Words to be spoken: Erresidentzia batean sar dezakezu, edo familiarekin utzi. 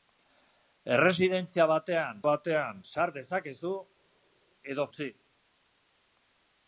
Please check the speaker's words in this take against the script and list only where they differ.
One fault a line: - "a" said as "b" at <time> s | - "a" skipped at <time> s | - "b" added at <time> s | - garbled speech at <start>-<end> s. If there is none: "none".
- "batean" added at 2.3 s
- "familiarekin" skipped at 4.9 s